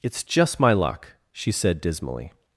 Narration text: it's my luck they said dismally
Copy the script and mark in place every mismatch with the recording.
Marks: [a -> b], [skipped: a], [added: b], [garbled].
it's [added: just] my luck [they -> she] said dismally